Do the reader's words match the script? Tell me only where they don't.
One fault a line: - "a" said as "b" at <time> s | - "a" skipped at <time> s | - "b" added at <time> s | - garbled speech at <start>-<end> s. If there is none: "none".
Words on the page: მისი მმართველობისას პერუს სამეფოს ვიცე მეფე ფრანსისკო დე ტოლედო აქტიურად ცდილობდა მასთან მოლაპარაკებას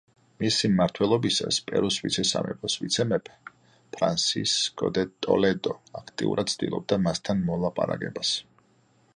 - "ვიცე" added at 2.0 s